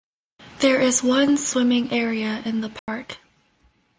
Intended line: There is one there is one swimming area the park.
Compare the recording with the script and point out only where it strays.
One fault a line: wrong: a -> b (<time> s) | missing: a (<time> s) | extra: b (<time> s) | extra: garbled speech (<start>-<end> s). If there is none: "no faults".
missing: there is one (1.4 s)
extra: in (2.5 s)